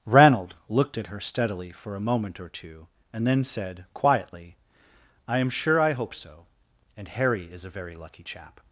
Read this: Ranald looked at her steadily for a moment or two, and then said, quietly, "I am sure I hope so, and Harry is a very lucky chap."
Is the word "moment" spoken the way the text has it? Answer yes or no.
yes